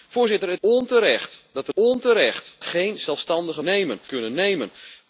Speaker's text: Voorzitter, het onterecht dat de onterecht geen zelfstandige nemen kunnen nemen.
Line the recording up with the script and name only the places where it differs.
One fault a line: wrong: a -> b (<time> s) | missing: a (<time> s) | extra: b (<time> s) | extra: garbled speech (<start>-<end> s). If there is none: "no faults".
no faults